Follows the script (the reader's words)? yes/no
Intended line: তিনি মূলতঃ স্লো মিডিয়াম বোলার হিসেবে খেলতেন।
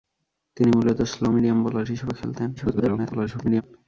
no